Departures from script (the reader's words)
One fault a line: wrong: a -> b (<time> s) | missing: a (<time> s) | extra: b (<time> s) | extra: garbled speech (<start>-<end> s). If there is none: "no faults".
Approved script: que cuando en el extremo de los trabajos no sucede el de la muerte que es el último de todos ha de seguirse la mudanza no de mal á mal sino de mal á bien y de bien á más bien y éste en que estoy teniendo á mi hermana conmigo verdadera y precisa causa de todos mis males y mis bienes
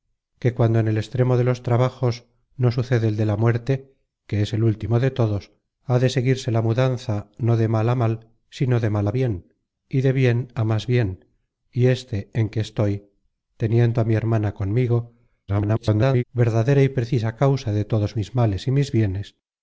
extra: garbled speech (15.5-16.2 s)